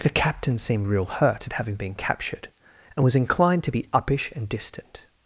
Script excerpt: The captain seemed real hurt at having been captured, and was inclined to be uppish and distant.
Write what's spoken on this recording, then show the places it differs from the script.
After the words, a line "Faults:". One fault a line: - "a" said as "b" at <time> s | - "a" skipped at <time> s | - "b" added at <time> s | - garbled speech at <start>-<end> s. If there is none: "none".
The captain seemed real hurt at having been captured, and was inclined to be uppish and distant.
Faults:
none